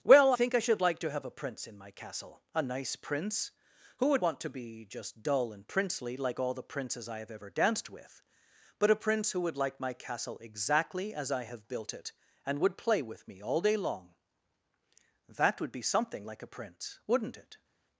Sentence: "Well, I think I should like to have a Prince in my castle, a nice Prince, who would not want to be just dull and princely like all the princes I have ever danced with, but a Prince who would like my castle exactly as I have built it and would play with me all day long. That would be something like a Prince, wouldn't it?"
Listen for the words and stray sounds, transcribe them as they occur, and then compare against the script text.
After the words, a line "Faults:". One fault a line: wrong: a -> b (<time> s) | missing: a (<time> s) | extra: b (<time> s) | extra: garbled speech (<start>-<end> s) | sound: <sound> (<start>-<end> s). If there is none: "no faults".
"Well, think I should like to have a Prince in my castle, a nice Prince, who would want to be just dull and princely like all the princes I have ever danced with, but a Prince who would like my castle exactly as I have built it and would play with me all day long. That would be something like a Prince, wouldn't it?"
Faults:
missing: I (0.3 s)
missing: not (4.2 s)